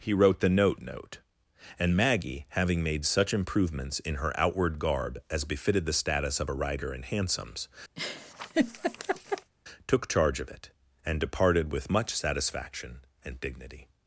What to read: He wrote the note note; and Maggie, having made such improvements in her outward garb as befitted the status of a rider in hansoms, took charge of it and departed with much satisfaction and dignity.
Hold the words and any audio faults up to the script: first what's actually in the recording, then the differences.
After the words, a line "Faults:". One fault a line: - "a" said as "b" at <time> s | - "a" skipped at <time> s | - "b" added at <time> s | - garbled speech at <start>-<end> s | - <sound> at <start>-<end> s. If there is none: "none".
He wrote the note note; and Maggie, having made such improvements in her outward garb as befitted the status of a rider in hansoms, took charge of it and departed with much satisfaction and dignity.
Faults:
- laugh at 8.0-9.5 s